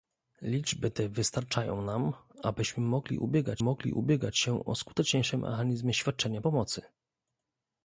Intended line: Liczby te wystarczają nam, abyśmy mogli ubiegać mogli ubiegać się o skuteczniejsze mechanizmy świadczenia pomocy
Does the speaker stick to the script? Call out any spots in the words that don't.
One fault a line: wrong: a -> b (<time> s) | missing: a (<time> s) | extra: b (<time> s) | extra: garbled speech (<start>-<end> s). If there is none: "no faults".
no faults